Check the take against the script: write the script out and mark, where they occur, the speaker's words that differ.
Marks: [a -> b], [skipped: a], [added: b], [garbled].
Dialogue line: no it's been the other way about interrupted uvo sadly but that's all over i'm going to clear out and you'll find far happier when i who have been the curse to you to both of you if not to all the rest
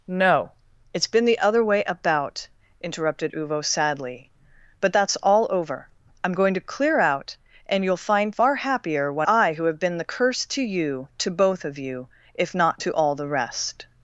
no it's been the other way about interrupted uvo sadly but that's all over i'm going to clear out and you'll find far happier when i who have been the curse to you to both of you if not to all the rest